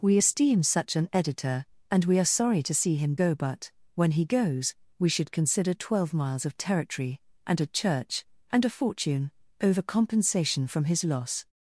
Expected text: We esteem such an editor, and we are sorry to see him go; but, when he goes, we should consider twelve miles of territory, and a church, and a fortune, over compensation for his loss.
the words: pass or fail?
fail